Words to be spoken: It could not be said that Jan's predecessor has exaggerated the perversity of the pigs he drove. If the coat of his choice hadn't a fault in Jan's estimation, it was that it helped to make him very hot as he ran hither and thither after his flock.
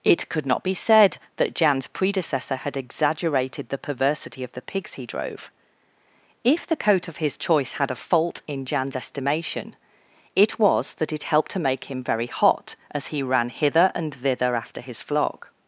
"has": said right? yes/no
no